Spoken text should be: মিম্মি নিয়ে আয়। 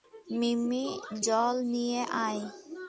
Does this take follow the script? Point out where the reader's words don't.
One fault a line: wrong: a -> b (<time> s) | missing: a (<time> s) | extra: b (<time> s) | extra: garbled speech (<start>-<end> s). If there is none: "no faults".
extra: জল (1.2 s)